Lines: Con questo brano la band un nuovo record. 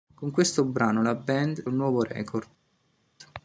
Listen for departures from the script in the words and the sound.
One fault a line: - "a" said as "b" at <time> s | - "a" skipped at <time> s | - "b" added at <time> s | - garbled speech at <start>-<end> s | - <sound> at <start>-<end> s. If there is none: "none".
none